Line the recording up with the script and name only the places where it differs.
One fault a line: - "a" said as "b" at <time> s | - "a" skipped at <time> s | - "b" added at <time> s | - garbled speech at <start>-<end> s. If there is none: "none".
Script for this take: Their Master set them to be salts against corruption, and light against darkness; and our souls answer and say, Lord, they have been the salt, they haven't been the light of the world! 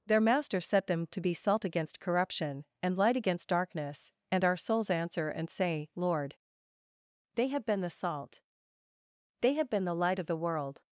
- "salts" said as "salt" at 1.3 s
- "haven't" said as "have" at 9.5 s